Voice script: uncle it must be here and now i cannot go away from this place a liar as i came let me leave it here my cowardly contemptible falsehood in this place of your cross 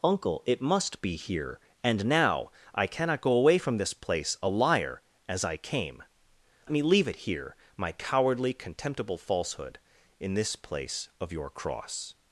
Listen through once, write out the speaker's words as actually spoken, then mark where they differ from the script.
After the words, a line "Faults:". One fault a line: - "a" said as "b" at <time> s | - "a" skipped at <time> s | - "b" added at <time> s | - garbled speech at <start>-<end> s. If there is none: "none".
uncle it must be here and now i cannot go away from this place a liar as i came me leave it here my cowardly contemptible falsehood in this place of your cross
Faults:
- "let" skipped at 6.0 s